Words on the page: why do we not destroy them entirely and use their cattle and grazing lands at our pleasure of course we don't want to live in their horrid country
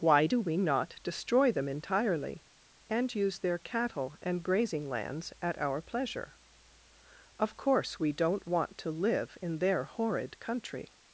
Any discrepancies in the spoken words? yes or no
no